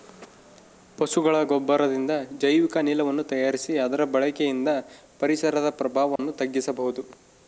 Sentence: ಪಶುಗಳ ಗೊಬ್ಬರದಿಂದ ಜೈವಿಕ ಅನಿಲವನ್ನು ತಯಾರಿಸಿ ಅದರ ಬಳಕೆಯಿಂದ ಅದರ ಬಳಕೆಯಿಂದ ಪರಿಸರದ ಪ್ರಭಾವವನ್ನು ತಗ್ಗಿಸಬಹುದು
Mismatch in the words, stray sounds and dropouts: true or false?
true